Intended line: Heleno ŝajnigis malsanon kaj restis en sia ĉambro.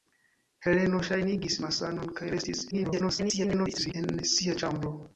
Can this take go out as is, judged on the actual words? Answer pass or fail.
fail